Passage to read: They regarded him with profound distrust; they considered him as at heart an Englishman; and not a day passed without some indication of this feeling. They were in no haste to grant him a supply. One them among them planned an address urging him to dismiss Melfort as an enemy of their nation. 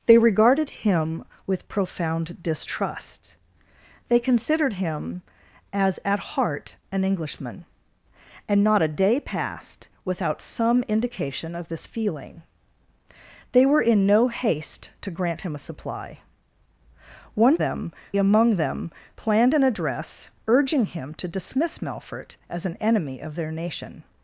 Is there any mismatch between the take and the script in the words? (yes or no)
no